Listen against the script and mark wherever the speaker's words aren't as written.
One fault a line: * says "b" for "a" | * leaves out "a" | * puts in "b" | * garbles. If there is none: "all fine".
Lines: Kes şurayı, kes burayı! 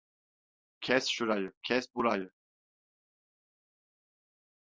all fine